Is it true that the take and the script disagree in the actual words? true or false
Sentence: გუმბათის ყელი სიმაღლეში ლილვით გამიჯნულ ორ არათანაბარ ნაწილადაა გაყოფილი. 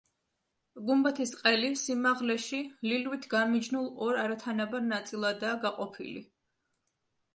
false